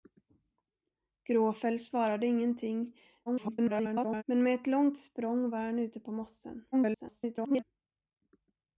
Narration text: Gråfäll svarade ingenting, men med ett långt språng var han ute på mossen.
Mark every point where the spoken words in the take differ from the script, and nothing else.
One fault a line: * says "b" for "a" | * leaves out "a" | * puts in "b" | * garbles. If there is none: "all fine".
* garbles
* garbles